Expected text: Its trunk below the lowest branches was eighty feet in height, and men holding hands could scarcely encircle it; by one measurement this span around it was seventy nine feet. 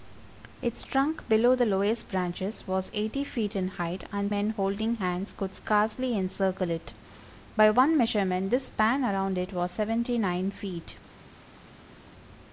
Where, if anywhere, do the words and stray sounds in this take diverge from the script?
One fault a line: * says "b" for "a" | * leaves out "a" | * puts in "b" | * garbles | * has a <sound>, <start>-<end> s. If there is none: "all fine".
all fine